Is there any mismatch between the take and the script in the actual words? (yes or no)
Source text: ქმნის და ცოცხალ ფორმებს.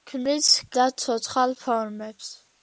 no